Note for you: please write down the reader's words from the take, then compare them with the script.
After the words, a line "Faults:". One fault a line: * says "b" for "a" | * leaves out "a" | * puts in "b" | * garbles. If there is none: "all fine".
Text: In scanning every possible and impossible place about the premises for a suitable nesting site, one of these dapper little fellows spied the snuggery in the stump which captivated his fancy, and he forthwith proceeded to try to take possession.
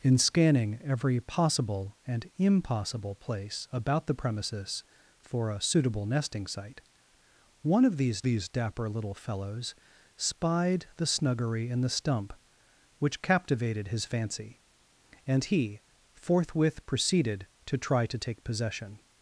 In scanning every possible and impossible place about the premises for a suitable nesting site, one of these these dapper little fellows spied the snuggery in the stump which captivated his fancy, and he forthwith proceeded to try to take possession.
Faults:
* puts in "these"